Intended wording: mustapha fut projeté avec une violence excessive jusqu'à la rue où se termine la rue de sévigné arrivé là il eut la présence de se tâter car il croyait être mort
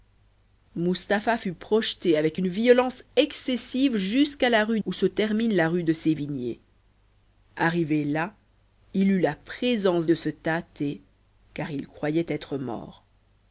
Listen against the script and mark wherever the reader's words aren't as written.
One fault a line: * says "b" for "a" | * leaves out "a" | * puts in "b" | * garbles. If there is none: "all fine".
all fine